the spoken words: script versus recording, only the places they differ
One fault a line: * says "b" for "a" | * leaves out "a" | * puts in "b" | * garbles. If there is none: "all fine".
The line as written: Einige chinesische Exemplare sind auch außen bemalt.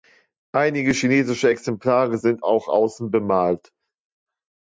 all fine